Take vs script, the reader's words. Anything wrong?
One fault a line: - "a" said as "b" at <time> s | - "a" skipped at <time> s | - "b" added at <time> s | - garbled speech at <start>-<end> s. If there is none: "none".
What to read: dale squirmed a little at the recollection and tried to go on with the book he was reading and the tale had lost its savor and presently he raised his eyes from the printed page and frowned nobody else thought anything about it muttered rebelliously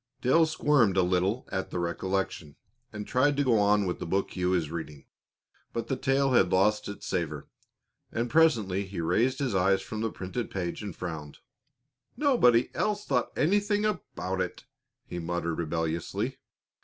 - "and" said as "but" at 5.7 s
- "he" added at 15.1 s